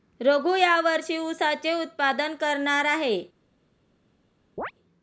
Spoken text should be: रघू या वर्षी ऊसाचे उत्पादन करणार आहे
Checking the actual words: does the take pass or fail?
pass